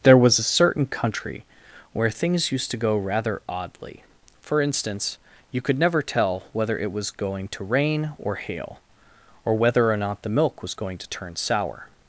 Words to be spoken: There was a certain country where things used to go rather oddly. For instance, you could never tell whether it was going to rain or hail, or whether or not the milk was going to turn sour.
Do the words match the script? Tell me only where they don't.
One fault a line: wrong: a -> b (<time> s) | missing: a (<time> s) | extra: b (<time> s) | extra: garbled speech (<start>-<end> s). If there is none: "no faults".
no faults